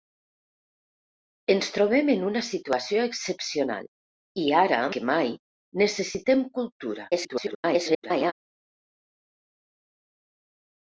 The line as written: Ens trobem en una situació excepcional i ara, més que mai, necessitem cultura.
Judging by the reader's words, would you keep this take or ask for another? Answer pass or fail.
fail